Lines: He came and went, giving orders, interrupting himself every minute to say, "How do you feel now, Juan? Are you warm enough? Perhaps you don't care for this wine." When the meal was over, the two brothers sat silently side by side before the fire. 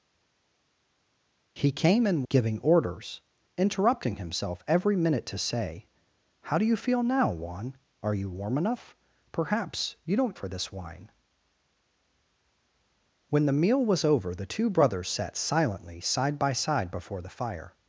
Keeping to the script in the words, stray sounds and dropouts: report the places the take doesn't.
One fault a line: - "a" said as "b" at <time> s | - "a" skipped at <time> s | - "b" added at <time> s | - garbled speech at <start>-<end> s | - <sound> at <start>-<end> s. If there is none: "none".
- "went" skipped at 2.2 s
- "care" skipped at 10.3 s